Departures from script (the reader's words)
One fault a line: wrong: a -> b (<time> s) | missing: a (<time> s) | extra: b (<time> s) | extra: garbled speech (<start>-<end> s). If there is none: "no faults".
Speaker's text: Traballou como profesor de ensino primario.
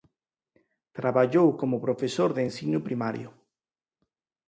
no faults